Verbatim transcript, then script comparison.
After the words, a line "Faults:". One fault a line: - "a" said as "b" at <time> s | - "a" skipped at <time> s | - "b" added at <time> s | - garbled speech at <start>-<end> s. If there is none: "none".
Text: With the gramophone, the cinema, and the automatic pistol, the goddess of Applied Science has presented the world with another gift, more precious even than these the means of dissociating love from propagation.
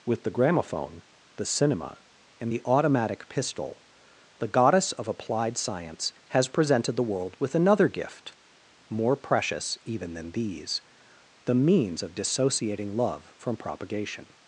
With the gramophone, the cinema, and the automatic pistol, the goddess of Applied Science has presented the world with another gift, more precious even than these the means of dissociating love from propagation.
Faults:
none